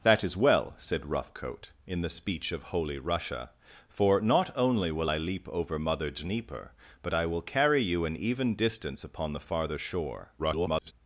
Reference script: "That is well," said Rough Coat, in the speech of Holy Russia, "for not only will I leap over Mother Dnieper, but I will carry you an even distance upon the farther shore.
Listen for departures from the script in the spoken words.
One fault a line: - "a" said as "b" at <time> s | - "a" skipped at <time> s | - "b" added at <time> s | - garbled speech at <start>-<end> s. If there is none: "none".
- garbled speech at 10.4-10.9 s